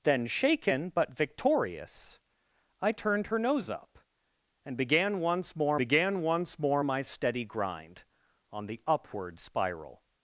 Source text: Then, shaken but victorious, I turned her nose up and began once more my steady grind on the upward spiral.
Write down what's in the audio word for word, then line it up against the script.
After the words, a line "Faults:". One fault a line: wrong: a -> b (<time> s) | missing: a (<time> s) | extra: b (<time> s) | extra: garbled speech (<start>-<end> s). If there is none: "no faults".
Then, shaken but victorious, I turned her nose up and began once more began once more my steady grind on the upward spiral.
Faults:
extra: began once more (5.7 s)